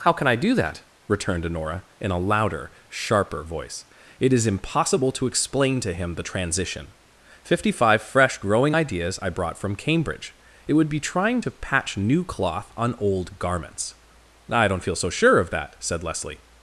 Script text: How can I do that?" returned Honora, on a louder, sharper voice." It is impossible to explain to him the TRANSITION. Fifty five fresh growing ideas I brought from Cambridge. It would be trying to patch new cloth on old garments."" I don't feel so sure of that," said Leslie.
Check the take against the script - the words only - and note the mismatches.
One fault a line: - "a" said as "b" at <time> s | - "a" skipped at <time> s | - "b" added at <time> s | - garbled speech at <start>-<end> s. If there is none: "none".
- "on" said as "in" at 2.0 s